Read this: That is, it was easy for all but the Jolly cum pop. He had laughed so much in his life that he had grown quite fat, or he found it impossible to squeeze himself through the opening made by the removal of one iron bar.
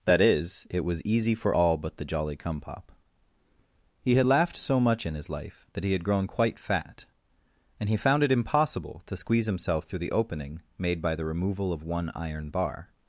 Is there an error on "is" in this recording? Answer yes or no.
no